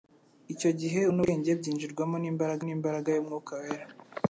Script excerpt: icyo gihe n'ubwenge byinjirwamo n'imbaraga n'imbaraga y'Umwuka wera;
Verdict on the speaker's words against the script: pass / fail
pass